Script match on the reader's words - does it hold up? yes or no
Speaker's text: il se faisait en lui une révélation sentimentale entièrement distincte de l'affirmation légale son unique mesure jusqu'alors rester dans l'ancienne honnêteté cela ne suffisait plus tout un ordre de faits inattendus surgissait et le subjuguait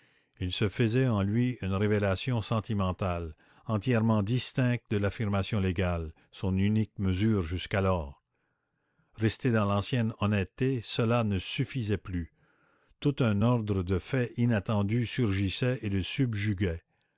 yes